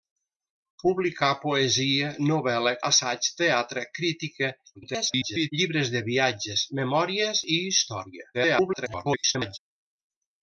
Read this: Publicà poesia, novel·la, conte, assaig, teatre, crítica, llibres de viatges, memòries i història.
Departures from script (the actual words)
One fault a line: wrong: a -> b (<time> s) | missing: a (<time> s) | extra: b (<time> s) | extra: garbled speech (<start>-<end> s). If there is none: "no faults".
missing: conte (2.7 s)
extra: garbled speech (4.7-5.5 s)
extra: garbled speech (8.3-9.6 s)